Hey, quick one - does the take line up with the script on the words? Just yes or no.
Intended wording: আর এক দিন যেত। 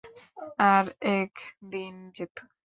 yes